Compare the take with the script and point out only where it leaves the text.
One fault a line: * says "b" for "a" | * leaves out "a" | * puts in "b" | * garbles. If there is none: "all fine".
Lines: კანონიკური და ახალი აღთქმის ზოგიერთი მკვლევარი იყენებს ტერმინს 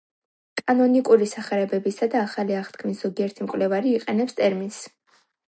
* puts in "სახარებებისა"